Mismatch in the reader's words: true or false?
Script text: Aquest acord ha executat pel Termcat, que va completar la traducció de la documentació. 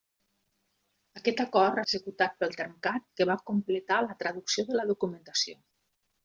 false